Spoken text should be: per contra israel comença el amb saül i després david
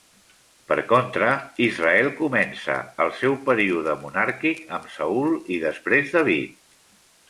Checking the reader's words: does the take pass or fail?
fail